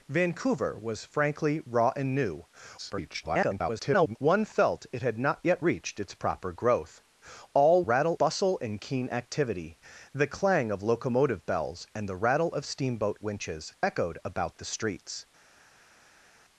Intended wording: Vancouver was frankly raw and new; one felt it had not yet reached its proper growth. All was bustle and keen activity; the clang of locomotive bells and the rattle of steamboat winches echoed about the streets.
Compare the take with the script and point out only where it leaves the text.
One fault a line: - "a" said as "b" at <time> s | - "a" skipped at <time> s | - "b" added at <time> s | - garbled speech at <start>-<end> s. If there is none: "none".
- garbled speech at 2.8-4.2 s
- "was" said as "rattle" at 7.8 s